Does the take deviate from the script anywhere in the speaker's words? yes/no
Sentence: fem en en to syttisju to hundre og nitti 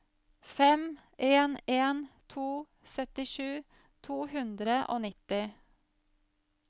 no